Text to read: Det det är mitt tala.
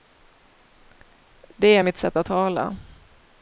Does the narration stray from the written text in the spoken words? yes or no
yes